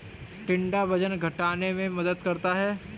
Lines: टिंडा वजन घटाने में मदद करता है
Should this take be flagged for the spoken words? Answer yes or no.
no